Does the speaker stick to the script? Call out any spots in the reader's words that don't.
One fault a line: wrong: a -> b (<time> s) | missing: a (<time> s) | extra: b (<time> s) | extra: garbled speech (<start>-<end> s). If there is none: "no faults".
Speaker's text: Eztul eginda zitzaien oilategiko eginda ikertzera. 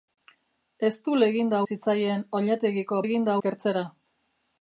no faults